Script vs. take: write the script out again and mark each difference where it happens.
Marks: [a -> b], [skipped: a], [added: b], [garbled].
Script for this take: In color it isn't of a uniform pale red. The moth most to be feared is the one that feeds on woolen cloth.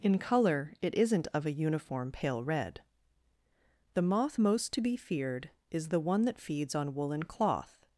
In color it isn't of a uniform pale red. The moth most to be feared is the one that feeds on woolen cloth.